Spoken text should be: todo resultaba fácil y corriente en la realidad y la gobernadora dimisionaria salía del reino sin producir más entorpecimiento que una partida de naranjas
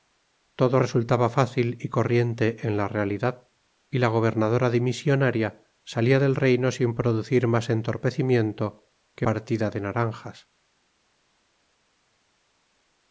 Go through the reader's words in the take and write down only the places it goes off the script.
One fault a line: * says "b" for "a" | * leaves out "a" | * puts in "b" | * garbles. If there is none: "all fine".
* leaves out "una"